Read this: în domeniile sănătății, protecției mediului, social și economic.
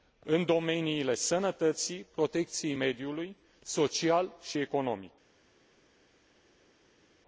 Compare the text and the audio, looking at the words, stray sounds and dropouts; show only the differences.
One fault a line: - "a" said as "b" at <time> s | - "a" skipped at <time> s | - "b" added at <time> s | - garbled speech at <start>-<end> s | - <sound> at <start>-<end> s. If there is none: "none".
none